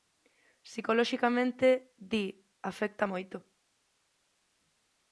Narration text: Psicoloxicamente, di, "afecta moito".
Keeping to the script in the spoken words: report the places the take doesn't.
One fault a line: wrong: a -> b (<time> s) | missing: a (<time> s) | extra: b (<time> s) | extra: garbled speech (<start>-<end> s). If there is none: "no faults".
no faults